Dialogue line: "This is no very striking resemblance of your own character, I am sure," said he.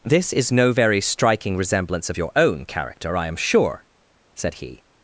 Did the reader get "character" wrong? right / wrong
right